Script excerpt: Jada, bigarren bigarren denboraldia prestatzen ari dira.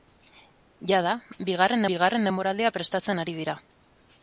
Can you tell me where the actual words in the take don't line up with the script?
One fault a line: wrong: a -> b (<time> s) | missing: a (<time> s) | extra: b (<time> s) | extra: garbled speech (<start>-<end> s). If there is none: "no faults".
no faults